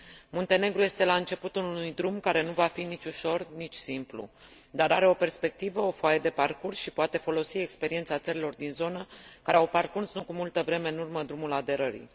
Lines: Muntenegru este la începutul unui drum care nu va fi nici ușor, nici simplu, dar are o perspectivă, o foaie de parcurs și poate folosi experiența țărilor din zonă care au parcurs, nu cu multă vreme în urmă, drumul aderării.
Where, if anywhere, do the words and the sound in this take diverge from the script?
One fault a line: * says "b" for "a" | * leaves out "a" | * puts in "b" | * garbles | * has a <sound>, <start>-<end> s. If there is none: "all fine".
all fine